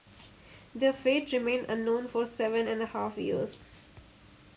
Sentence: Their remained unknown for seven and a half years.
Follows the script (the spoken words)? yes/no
no